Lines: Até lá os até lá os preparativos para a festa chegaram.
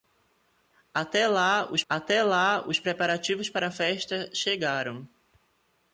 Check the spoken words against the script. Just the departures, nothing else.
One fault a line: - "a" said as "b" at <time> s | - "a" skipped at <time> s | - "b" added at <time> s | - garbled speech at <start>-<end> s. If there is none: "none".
none